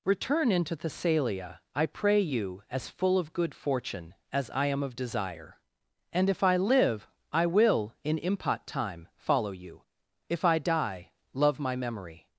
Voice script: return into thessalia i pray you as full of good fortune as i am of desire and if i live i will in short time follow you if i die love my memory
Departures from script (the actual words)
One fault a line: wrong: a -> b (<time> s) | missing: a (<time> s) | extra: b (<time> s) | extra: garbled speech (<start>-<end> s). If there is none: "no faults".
wrong: short -> impot (8.2 s)